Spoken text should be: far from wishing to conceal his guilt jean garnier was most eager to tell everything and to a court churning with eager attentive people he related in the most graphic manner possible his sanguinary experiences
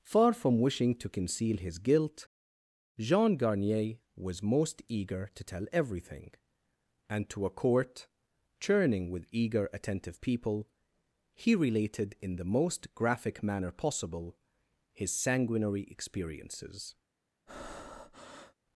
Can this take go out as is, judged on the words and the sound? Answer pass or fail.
fail